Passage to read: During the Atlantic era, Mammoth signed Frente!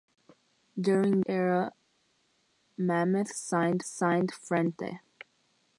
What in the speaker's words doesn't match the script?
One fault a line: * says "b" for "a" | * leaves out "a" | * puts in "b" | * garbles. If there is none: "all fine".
* leaves out "the Atlantic"
* puts in "signed"